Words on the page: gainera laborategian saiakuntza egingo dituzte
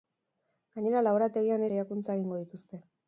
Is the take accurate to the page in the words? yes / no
yes